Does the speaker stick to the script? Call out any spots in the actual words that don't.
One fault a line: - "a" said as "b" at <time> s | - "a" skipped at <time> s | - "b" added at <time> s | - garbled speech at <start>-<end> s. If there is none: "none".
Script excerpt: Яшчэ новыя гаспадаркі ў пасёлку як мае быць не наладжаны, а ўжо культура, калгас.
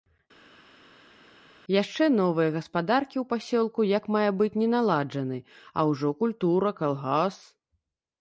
none